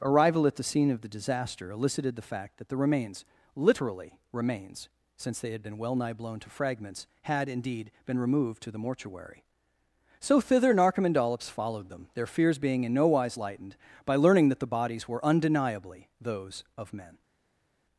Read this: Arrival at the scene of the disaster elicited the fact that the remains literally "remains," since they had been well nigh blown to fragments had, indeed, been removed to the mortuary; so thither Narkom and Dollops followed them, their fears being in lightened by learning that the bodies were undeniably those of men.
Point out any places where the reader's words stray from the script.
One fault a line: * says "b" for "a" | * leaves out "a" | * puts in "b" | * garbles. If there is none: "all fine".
* puts in "no wise"